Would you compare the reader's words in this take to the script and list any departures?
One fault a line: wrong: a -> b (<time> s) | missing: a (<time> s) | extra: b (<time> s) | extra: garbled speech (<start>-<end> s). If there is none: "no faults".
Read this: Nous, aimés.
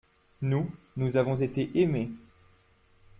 extra: nous avons été (0.9 s)